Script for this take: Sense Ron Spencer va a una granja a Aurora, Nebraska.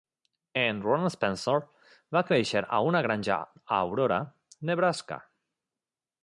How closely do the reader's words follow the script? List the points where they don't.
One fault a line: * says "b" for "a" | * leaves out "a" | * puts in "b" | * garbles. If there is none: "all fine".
* says "En" for "Sense"
* puts in "créixer"